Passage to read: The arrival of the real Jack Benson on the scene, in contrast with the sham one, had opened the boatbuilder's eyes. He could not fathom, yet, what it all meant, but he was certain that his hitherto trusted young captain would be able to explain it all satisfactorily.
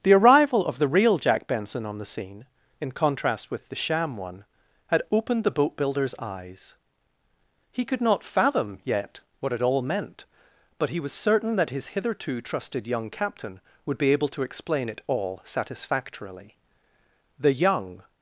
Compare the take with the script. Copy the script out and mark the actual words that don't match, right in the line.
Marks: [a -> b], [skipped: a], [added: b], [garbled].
The arrival of the real Jack Benson on the scene, in contrast with the sham one, had opened the boatbuilder's eyes. He could not fathom, yet, what it all meant, but he was certain that his hitherto trusted young captain would be able to explain it all satisfactorily. [added: The young]